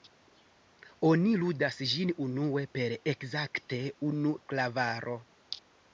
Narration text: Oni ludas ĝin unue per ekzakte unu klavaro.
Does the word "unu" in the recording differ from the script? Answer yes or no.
no